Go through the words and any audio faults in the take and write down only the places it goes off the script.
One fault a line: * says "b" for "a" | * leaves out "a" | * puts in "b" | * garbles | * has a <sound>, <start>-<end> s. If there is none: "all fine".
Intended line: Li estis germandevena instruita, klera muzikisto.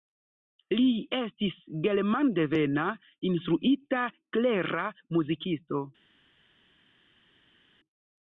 all fine